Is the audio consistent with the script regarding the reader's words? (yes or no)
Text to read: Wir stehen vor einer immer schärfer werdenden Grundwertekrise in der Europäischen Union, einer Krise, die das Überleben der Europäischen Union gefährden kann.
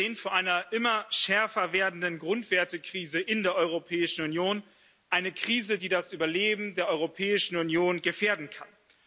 yes